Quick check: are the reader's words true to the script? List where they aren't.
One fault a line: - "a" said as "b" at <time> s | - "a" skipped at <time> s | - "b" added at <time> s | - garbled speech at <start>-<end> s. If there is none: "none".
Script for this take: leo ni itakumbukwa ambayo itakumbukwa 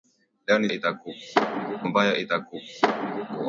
none